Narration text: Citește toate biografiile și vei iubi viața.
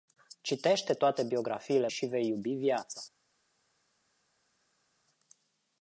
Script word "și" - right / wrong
right